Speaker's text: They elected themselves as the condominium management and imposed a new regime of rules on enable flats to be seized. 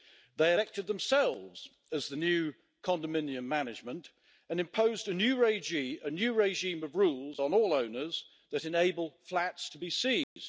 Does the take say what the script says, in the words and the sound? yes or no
no